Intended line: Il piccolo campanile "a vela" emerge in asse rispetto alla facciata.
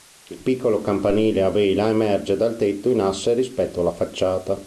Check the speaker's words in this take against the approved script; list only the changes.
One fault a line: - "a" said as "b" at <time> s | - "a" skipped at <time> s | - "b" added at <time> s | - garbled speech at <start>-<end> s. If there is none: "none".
- "dal tetto" added at 2.4 s